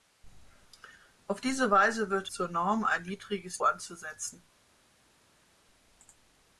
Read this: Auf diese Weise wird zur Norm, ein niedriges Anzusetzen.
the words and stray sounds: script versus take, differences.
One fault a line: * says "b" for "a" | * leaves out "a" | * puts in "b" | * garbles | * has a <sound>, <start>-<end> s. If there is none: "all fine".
all fine